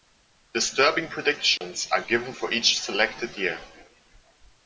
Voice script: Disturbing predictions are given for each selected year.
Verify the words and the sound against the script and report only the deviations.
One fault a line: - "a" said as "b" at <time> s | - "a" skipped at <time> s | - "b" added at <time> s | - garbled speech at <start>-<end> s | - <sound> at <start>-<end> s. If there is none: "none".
- dropout at 1.6-1.6 s